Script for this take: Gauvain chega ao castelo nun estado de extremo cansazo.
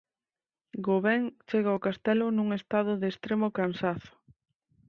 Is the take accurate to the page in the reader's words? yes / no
yes